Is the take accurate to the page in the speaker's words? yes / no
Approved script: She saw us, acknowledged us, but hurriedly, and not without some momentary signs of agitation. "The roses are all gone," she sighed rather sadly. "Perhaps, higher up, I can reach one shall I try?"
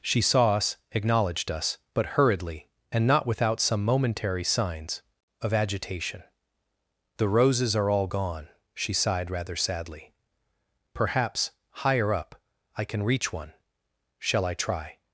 yes